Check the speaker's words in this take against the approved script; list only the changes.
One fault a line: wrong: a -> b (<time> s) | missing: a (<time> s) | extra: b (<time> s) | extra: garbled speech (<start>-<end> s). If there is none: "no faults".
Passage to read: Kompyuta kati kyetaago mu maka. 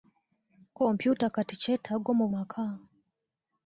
no faults